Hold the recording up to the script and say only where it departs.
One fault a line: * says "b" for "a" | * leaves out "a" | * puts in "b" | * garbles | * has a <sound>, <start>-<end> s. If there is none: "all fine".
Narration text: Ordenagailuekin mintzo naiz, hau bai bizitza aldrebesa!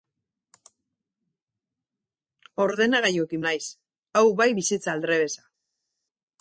* leaves out "mintzo"